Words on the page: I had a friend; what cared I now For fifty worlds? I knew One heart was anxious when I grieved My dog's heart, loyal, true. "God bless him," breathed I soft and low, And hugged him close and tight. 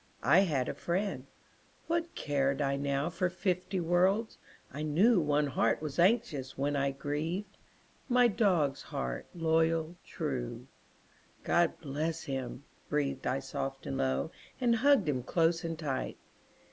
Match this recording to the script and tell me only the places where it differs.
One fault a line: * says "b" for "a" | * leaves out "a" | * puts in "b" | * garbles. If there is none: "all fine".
all fine